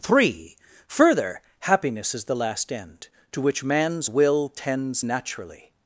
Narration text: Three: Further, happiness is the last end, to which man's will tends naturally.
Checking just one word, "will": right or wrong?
right